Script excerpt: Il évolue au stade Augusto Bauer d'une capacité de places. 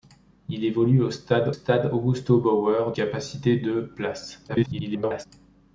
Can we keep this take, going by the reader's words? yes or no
no